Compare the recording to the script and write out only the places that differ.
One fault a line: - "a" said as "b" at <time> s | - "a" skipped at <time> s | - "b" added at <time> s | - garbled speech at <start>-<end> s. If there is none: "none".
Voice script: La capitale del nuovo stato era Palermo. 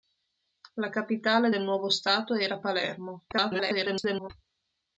- garbled speech at 3.3-4.3 s